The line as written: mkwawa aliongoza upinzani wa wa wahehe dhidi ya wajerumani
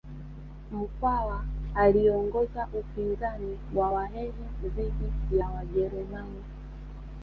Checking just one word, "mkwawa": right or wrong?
right